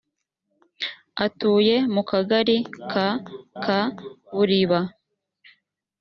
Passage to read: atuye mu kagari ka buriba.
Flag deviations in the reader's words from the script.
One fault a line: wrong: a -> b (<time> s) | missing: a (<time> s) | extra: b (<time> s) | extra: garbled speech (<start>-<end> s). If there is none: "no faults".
extra: ka (3.6 s)